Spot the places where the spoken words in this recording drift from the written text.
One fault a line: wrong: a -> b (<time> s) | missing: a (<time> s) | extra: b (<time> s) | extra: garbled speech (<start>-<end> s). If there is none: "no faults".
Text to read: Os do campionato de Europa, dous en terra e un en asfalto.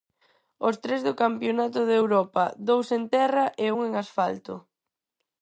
extra: tres (0.8 s)